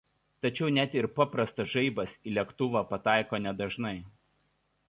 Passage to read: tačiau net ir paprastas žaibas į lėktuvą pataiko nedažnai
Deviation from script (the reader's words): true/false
false